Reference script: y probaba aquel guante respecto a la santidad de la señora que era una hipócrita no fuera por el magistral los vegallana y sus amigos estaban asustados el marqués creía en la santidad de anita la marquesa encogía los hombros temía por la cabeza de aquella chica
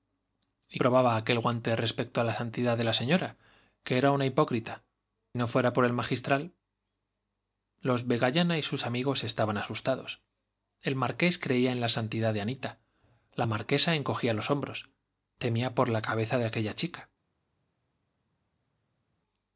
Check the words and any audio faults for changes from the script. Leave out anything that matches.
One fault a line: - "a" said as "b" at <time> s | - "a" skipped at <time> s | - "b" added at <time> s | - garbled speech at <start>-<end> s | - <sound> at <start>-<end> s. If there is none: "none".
none